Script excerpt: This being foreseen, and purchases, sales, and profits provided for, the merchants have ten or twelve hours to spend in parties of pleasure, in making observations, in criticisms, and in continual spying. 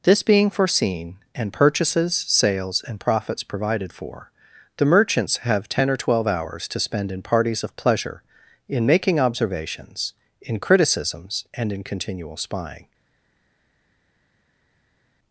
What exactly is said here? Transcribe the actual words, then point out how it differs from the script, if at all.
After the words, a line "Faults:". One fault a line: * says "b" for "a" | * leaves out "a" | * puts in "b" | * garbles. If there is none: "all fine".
This being foreseen, and purchases, sales, and profits provided for, the merchants have ten or twelve hours to spend in parties of pleasure, in making observations, in criticisms, and in continual spying.
Faults:
all fine